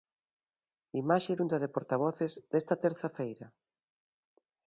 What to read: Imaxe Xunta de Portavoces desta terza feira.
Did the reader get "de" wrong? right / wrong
right